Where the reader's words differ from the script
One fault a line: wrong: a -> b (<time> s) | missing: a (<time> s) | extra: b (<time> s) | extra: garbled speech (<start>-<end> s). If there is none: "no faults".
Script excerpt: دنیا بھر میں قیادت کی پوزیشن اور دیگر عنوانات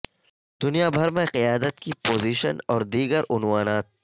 no faults